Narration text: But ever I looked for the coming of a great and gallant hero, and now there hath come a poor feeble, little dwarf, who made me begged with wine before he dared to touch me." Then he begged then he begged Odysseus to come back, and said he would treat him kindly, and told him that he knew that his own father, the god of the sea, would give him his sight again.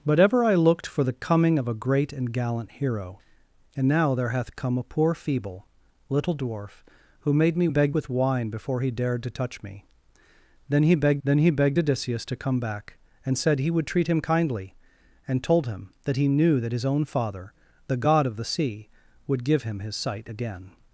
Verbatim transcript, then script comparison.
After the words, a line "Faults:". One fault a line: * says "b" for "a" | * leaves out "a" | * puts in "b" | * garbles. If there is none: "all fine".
But ever I looked for the coming of a great and gallant hero, and now there hath come a poor feeble, little dwarf, who made me begged with wine before he dared to touch me." Then he begged then he begged Odysseus to come back, and said he would treat him kindly, and told him that he knew that his own father, the god of the sea, would give him his sight again.
Faults:
all fine